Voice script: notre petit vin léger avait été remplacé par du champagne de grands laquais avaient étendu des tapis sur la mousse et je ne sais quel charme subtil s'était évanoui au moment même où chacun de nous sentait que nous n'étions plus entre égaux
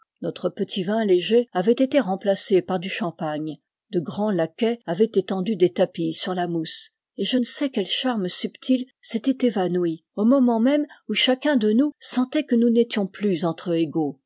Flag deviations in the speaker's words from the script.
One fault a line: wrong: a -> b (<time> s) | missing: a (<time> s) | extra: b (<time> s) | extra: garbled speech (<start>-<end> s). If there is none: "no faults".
no faults